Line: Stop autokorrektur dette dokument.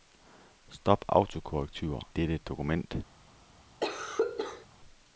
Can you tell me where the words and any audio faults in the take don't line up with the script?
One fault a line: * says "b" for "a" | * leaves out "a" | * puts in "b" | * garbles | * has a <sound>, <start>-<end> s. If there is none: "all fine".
* has a cough, 3.8-4.7 s